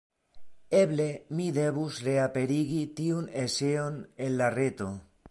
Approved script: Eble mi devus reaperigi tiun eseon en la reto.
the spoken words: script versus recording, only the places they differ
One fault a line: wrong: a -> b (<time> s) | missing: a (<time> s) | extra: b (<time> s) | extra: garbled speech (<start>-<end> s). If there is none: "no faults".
no faults